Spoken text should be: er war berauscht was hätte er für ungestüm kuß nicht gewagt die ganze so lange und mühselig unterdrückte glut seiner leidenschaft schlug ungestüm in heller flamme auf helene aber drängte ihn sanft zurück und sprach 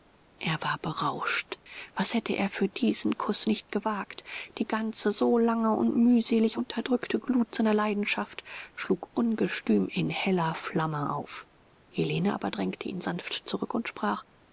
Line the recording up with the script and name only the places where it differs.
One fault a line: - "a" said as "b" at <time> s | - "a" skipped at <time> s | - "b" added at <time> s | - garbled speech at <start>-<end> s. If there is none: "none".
- "ungestüm" said as "diesen" at 2.7 s